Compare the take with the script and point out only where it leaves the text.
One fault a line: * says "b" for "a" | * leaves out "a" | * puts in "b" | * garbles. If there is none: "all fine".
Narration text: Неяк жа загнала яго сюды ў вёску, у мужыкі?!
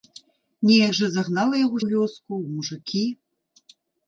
* leaves out "сюды"